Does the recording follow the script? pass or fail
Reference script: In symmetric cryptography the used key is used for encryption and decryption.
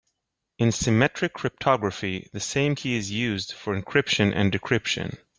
fail